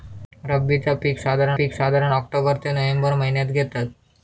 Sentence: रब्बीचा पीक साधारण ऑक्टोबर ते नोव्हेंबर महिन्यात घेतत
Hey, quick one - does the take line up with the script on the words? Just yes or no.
no